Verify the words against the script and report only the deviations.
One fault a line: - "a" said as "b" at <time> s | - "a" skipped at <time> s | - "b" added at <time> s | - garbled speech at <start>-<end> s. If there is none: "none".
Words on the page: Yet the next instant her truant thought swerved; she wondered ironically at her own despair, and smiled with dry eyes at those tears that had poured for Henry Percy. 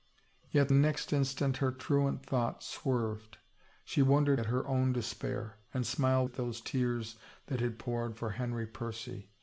- "the" skipped at 0.7 s
- "ironically" skipped at 4.4 s
- "with dry eyes" skipped at 6.3 s